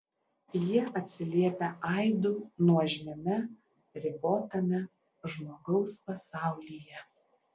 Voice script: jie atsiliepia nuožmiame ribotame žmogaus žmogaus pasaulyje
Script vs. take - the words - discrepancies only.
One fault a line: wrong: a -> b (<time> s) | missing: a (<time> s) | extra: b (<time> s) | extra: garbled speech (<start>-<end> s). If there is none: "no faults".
extra: aidu (1.9 s)
missing: žmogaus (5.9 s)